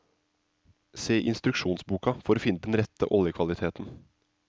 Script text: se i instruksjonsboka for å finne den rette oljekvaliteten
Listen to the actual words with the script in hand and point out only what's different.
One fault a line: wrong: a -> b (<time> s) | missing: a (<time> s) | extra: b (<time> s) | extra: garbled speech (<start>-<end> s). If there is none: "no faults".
no faults